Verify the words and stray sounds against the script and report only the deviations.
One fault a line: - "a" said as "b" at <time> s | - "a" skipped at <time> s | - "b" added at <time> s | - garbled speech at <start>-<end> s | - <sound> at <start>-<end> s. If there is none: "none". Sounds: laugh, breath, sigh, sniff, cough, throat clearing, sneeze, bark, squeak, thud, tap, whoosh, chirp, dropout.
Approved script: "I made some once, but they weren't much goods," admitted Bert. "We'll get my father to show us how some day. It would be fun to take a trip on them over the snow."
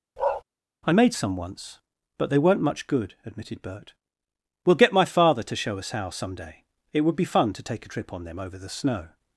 - bark at 0.2-0.4 s
- "goods" said as "good" at 2.9 s